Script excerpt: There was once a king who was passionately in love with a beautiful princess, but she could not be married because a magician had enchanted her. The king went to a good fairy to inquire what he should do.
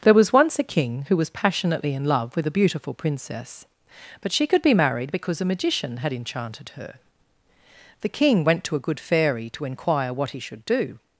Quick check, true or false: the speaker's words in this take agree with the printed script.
false